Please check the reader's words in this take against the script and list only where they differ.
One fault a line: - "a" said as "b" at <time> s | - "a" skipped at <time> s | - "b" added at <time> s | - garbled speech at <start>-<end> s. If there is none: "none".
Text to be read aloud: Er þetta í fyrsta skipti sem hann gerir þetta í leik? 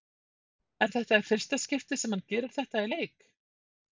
none